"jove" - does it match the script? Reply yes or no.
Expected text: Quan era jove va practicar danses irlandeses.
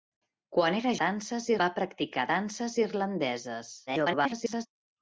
no